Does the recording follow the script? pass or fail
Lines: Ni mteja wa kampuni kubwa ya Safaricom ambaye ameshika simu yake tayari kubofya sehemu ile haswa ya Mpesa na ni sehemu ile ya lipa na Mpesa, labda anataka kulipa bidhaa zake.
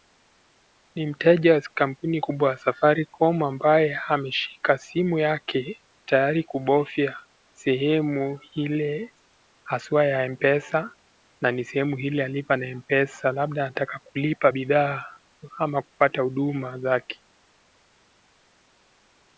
fail